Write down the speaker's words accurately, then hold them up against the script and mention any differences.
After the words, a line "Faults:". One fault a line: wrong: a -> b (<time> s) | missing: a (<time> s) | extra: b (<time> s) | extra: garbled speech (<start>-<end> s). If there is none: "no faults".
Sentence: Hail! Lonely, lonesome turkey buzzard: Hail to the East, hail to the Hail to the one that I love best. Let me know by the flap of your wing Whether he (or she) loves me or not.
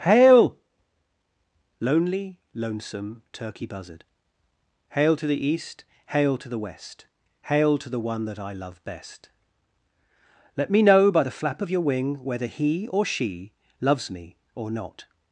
Hail! Lonely, lonesome turkey buzzard: Hail to the East, hail to the West, Hail to the one that I love best. Let me know by the flap of your wing Whether he (or she) loves me or not.
Faults:
extra: West (6.6 s)